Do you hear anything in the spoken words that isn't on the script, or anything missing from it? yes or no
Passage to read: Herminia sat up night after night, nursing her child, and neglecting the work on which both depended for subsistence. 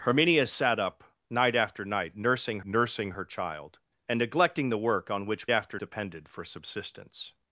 yes